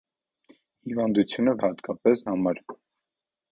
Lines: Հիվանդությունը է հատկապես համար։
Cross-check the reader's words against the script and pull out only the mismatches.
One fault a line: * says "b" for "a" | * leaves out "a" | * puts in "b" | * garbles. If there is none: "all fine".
all fine